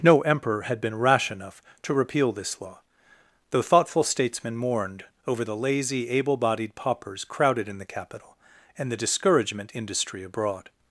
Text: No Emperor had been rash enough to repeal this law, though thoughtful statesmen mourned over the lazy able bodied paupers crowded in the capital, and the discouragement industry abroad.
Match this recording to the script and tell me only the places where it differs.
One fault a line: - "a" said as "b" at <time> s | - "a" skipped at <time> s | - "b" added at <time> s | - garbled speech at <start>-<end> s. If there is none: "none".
none